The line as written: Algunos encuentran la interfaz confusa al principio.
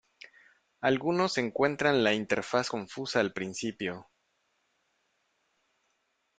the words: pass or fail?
pass